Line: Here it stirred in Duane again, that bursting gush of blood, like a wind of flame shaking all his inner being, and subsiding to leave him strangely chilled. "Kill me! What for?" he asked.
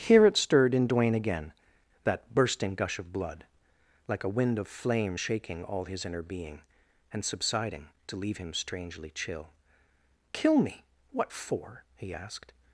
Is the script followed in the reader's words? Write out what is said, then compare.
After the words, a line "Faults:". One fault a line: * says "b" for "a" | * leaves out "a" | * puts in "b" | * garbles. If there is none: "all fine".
Here it stirred in Duane again, that bursting gush of blood, like a wind of flame shaking all his inner being, and subsiding to leave him strangely chill. "Kill me! What for?" he asked.
Faults:
* says "chill" for "chilled"